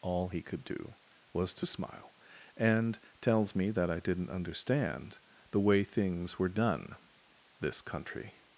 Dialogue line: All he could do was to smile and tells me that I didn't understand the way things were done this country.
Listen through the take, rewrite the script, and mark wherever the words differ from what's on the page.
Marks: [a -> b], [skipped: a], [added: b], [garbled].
All he could do was to smile and tells me that I didn't understand the way things were done this country.